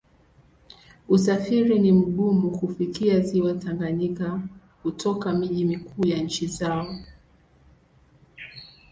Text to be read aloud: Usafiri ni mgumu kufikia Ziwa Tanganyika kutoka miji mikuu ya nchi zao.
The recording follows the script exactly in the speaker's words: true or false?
true